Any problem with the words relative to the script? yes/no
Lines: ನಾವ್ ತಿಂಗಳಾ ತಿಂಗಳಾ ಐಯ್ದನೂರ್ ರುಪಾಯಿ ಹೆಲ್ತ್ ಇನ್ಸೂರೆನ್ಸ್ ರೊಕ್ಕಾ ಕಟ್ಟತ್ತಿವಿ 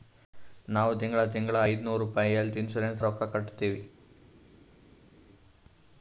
no